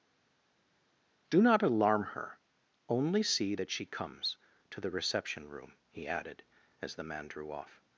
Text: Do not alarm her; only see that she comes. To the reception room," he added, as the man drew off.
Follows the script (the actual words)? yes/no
yes